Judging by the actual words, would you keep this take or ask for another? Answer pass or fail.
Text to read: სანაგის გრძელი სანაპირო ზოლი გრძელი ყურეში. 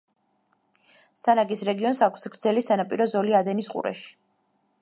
fail